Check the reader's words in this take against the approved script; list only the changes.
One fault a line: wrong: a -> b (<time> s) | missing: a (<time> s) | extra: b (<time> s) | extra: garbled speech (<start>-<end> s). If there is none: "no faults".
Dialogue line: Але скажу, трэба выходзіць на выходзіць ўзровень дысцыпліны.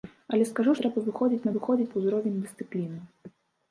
no faults